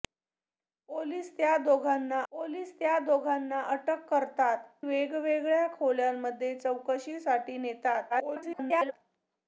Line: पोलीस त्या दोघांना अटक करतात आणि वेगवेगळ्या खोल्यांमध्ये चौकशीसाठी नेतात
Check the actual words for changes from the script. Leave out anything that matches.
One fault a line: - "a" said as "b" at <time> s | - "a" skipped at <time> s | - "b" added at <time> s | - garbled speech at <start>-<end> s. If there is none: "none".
- "पोलीस त्या दोघांना" added at 2.3 s
- "आणि" skipped at 4.7 s
- garbled speech at 8.1-8.9 s